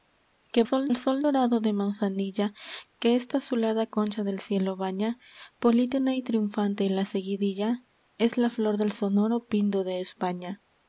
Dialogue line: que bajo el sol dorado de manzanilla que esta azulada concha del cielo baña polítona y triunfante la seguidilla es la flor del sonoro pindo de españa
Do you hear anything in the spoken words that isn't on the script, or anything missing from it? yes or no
yes